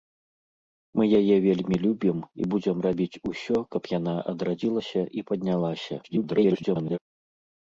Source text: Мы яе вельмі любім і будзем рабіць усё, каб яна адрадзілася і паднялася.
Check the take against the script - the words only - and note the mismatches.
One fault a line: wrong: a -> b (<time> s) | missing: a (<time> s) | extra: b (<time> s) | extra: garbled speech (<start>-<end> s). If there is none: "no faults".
extra: garbled speech (6.0-7.0 s)